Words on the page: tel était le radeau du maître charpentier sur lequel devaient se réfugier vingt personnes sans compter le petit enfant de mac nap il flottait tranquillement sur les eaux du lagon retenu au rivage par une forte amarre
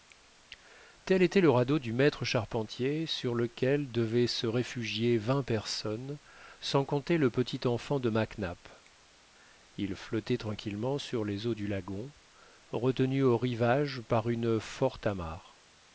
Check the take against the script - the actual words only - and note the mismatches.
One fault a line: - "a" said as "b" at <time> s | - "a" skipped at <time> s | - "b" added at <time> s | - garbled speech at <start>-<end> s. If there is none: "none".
none